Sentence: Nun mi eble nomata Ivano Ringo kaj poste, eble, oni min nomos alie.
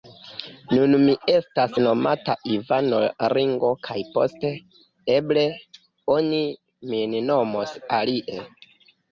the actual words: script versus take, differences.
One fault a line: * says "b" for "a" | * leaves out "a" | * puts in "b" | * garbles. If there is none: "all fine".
* says "estas" for "eble"